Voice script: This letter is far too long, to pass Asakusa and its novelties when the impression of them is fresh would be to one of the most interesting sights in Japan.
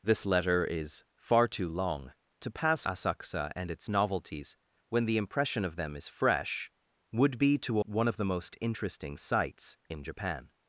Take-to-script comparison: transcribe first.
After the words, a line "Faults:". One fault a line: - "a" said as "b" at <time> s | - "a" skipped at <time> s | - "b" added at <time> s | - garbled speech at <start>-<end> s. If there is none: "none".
This letter is far too long, to pass Asakusa and its novelties when the impression of them is fresh would be to one of the most interesting sights in Japan.
Faults:
none